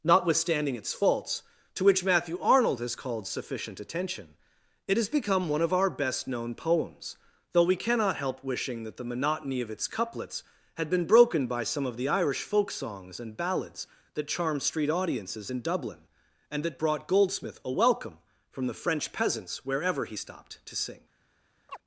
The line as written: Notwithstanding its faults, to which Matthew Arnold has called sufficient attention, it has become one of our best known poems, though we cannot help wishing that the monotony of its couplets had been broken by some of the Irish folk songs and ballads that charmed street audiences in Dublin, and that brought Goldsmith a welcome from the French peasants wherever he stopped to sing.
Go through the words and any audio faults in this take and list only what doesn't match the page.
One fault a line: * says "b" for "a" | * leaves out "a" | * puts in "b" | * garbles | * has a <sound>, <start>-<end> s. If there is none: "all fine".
* has a chirp, 21.7-21.8 s